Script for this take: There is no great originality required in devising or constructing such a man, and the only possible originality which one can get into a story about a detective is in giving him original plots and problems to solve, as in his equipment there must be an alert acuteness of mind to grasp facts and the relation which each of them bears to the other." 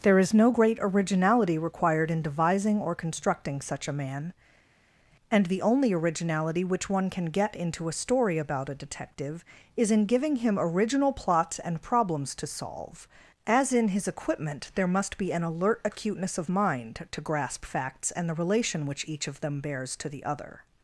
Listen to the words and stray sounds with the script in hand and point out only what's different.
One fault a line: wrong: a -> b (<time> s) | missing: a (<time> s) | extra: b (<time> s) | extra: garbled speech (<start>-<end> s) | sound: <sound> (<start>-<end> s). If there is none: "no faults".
missing: possible (5.9 s)